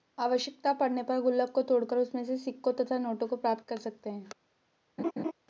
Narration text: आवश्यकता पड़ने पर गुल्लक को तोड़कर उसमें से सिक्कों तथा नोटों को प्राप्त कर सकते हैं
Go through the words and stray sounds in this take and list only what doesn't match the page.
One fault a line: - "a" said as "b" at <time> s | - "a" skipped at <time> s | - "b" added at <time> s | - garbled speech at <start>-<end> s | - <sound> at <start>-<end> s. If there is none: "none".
- laugh at 5.0-5.3 s